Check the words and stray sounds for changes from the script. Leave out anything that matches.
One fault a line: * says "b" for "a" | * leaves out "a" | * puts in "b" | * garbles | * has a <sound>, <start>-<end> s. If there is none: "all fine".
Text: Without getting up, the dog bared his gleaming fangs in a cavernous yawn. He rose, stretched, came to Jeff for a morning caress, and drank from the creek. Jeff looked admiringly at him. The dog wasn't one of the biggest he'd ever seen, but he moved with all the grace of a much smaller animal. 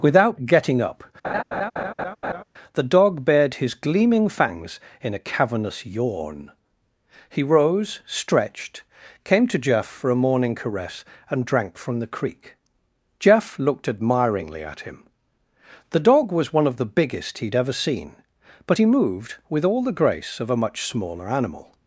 * has a laugh, 1.2-2.4 s
* says "was" for "wasn't"